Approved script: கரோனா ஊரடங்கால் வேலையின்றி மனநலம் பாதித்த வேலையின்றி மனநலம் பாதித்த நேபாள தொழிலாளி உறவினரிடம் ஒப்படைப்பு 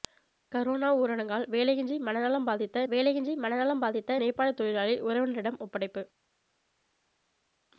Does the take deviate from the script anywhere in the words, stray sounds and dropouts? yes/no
no